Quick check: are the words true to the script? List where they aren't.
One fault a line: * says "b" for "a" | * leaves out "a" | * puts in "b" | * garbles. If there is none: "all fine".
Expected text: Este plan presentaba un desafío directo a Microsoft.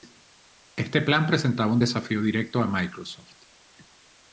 all fine